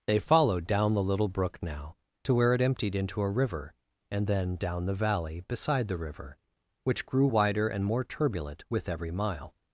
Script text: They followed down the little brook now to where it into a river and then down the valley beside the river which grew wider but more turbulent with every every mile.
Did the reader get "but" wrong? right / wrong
wrong